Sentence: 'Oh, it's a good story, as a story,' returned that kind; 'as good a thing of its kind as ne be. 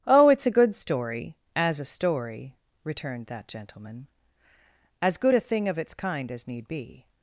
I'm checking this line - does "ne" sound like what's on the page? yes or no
no